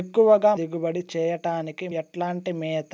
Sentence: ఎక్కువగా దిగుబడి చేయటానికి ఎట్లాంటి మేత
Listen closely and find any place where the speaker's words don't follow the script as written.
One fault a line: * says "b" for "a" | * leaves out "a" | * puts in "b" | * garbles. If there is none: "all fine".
all fine